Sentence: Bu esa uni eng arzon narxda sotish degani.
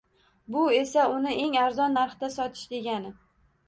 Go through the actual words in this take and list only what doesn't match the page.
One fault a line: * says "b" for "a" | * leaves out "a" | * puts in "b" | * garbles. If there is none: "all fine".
all fine